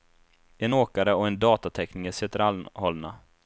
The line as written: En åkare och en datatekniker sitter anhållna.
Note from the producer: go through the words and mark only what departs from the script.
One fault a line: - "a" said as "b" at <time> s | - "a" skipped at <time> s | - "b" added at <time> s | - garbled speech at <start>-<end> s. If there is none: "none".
none